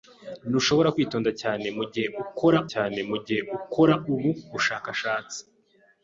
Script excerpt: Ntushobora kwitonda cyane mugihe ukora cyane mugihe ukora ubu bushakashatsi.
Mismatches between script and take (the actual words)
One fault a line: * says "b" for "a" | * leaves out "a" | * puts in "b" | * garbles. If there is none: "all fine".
all fine